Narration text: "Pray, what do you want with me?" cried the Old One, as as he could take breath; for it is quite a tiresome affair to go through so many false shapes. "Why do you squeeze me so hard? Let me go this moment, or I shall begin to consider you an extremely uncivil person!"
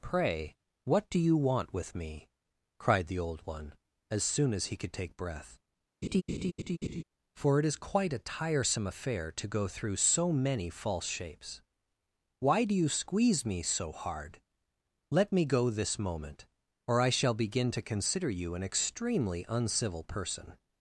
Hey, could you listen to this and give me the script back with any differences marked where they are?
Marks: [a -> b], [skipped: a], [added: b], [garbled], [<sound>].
"Pray, what do you want with me?" cried the Old One, as [added: soon] as he could take breath; [laugh] for it is quite a tiresome affair to go through so many false shapes. "Why do you squeeze me so hard? Let me go this moment, or I shall begin to consider you an extremely uncivil person!"